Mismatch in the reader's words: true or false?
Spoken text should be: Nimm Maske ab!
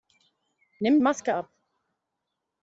false